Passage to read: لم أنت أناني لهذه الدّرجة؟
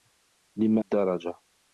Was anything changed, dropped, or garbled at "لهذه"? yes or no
yes